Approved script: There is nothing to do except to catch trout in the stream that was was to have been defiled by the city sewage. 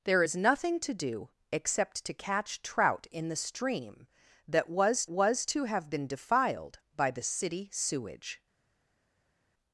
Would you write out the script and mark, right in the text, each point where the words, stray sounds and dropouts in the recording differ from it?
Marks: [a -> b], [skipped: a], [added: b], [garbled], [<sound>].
There is nothing to do except to catch trout in the stream that was was to have been defiled by the city sewage.